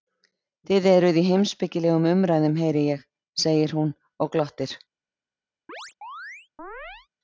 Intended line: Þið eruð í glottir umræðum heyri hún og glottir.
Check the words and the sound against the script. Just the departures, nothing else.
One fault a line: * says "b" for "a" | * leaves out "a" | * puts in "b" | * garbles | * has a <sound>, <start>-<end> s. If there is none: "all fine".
* says "heimspekilegum" for "glottir"
* puts in "ég segir"
* has a chirp, 5.7-7.1 s